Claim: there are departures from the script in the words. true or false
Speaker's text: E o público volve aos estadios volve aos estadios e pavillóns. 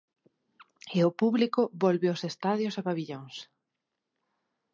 true